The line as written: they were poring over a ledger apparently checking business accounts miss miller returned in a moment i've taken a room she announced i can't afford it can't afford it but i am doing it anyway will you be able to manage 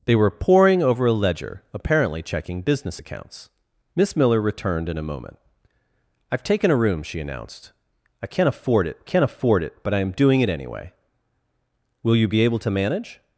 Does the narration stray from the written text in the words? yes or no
no